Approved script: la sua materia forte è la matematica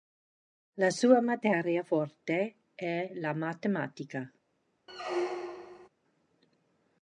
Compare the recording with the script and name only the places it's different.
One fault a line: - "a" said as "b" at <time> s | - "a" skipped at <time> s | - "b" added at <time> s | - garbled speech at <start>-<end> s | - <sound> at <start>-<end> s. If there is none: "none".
- squeak at 4.9-5.9 s